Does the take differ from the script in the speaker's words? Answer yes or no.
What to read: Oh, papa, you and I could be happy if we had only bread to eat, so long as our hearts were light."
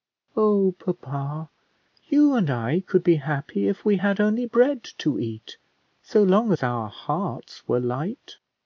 no